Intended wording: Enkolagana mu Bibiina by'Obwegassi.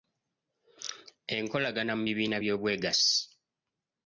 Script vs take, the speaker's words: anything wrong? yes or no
no